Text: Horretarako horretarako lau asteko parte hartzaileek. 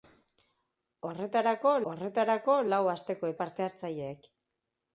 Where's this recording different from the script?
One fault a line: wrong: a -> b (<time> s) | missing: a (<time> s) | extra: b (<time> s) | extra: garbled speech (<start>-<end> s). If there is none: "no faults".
no faults